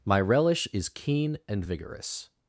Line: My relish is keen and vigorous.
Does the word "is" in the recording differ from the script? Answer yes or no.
no